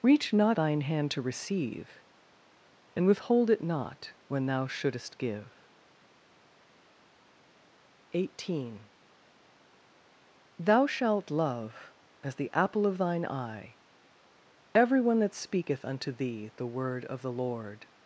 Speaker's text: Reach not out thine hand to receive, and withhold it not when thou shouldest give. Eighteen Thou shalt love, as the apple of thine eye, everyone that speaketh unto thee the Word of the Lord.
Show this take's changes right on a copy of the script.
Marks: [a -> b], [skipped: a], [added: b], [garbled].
Reach not [skipped: out] thine hand to receive, and withhold it not when thou shouldest give. Eighteen Thou shalt love, as the apple of thine eye, everyone that speaketh unto thee the Word of the Lord.